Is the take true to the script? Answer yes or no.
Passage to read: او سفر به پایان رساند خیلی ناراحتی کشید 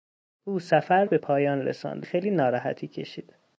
yes